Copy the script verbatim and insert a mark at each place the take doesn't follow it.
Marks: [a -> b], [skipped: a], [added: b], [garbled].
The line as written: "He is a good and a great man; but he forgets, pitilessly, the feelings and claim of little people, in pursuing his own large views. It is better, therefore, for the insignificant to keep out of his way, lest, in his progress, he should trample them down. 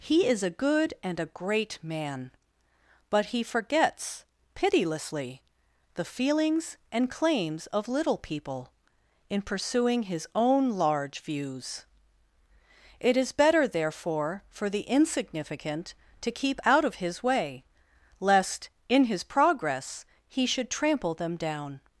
"He is a good and a great man; but he forgets, pitilessly, the feelings and [claim -> claims] of little people, in pursuing his own large views. It is better, therefore, for the insignificant to keep out of his way, lest, in his progress, he should trample them down.